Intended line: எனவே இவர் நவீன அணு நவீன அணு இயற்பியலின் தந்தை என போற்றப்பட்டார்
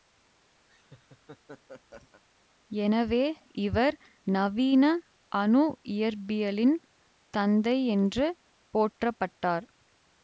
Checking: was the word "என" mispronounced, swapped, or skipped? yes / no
yes